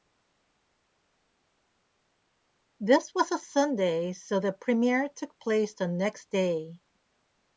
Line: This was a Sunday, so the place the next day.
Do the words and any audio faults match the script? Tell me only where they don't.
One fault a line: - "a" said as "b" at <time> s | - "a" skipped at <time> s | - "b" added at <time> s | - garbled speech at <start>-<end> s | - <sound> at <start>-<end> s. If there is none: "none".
- "premiere took" added at 4.5 s